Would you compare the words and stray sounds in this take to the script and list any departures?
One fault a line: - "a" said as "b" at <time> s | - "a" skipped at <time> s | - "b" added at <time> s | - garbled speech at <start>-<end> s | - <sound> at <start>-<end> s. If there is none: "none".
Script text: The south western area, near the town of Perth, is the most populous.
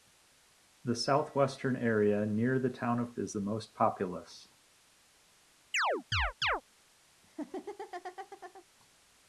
- "Perth" skipped at 3.1 s
- chirp at 5.7-6.6 s
- laugh at 7.2-8.6 s